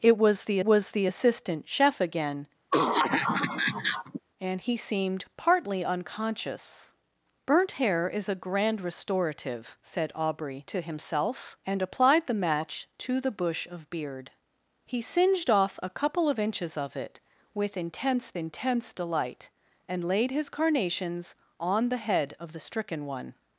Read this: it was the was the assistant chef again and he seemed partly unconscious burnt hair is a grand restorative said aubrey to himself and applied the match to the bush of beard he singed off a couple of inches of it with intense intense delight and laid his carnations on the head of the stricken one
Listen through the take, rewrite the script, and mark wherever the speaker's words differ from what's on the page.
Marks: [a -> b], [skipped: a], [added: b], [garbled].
it was the was the assistant chef again and he seemed partly unconscious burnt hair is a grand restorative said aubrey to himself and applied the match to the bush of beard he singed off a couple of inches of it with intense intense delight and laid his carnations on the head of the stricken one